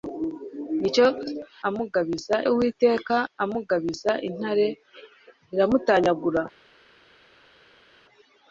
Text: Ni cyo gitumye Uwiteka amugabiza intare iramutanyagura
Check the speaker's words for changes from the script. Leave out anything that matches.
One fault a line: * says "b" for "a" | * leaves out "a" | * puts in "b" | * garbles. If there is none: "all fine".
* says "amugabiza" for "gitumye"